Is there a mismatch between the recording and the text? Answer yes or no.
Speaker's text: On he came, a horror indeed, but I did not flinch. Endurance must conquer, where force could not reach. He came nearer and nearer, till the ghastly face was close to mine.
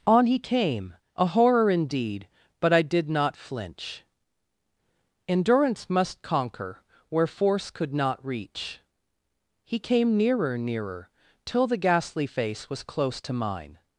yes